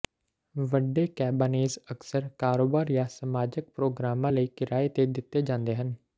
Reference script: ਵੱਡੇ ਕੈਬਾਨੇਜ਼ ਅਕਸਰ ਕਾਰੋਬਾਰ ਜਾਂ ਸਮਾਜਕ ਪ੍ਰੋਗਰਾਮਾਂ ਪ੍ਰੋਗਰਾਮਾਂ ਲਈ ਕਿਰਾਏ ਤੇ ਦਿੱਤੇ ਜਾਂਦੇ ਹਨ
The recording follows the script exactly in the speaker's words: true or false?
false